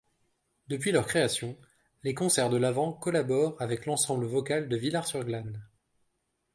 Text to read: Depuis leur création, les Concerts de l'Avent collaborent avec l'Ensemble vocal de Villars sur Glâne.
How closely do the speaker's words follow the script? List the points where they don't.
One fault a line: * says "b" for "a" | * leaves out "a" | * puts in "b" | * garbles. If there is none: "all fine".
all fine